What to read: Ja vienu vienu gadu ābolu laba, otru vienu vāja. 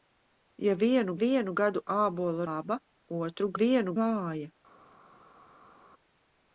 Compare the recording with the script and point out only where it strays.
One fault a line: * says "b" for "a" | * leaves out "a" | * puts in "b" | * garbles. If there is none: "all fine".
all fine